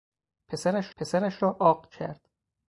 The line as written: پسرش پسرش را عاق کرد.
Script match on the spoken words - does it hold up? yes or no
yes